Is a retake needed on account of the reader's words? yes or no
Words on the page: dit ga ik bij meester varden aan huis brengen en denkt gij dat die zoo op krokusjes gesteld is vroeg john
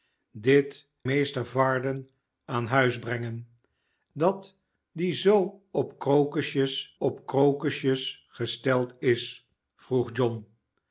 yes